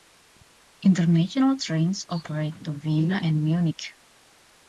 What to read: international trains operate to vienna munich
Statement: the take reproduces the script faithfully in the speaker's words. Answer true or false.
false